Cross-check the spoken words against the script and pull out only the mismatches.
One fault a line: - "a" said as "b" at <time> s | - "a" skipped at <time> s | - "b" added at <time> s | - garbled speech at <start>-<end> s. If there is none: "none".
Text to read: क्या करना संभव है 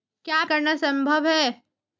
none